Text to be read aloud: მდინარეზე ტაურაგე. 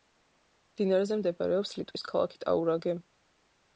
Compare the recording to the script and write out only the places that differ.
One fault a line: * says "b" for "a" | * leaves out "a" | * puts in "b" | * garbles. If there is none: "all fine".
* puts in "მდებარეობს ლიტვის ქალაქი"